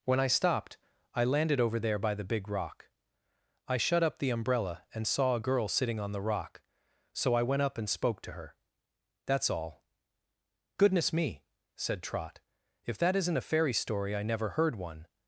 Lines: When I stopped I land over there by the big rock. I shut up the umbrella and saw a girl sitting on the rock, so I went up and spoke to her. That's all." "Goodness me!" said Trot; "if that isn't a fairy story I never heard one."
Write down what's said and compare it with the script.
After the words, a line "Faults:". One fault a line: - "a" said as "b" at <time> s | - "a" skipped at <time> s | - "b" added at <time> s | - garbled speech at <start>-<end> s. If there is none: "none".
When I stopped I landed over there by the big rock. I shut up the umbrella and saw a girl sitting on the rock, so I went up and spoke to her. That's all." "Goodness me!" said Trot; "if that isn't a fairy story I never heard one."
Faults:
- "land" said as "landed" at 1.2 s